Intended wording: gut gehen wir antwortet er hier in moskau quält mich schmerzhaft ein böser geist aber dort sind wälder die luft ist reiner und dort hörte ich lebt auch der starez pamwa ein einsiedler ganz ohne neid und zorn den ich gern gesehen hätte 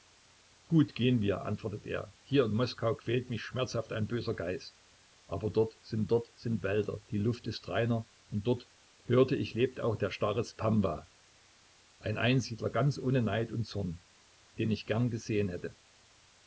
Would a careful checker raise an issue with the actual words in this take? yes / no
yes